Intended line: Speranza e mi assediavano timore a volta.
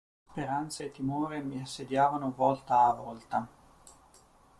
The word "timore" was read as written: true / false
false